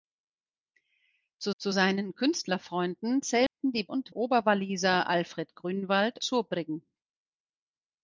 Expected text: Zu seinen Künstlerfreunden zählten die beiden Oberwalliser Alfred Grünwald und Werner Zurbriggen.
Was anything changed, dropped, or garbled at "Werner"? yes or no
yes